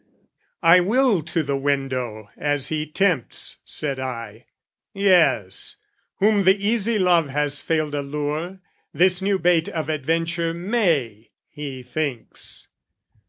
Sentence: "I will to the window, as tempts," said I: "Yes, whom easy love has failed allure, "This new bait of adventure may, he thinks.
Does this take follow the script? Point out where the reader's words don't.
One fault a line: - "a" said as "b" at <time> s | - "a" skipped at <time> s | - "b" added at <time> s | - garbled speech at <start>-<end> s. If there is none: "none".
- "he" added at 2.7 s
- "the" added at 6.4 s